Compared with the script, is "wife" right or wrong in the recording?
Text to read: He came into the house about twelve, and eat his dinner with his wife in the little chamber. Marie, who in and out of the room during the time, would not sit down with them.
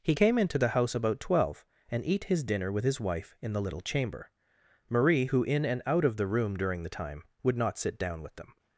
right